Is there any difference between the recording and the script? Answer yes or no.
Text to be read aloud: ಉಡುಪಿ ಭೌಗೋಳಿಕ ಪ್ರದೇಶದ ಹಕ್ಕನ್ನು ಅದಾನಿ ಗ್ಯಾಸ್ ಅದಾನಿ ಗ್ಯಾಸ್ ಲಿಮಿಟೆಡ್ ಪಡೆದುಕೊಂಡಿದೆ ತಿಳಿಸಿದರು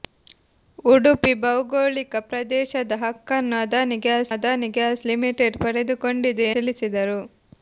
no